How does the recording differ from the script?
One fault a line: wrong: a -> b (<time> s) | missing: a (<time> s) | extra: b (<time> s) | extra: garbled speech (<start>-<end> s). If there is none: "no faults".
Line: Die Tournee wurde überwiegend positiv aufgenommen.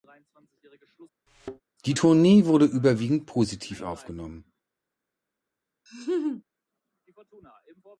no faults